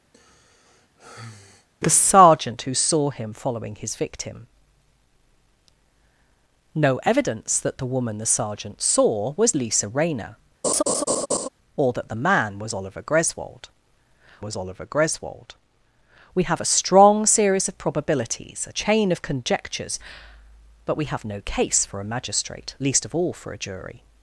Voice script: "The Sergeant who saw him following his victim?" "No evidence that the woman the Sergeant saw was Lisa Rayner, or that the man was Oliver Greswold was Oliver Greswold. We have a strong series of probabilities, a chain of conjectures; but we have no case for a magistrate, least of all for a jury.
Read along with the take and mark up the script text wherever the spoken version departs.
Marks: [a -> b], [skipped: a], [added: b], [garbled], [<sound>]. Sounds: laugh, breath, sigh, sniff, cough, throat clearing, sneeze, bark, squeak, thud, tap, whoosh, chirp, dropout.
[sigh] "The Sergeant who saw him following his victim?" "No evidence that the woman the Sergeant saw was Lisa Rayner, [laugh] or that the man was Oliver Greswold was Oliver Greswold. We have a strong series of probabilities, a chain of conjectures; but we have no case for a magistrate, least of all for a jury.